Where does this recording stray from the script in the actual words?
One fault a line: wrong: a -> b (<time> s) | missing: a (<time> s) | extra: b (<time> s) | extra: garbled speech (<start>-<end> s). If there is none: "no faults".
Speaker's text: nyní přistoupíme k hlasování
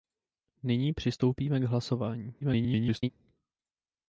extra: garbled speech (2.4-3.1 s)